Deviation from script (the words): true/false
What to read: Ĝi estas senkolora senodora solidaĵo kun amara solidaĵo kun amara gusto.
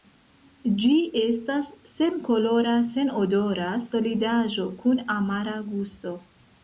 true